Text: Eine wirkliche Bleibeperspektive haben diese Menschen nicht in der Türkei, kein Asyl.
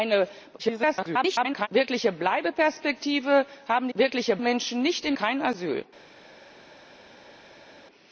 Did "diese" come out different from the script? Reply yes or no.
yes